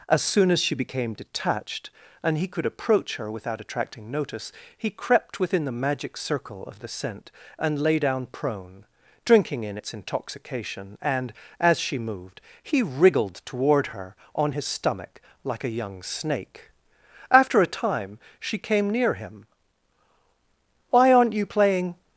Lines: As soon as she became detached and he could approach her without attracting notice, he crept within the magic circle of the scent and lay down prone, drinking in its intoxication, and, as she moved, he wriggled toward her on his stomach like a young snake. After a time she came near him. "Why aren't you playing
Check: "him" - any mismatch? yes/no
no